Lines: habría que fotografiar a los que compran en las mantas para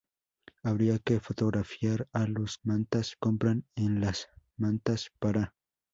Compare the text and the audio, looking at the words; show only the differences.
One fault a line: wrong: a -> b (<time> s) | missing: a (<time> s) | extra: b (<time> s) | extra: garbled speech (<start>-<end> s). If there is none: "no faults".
wrong: que -> mantas (2.6 s)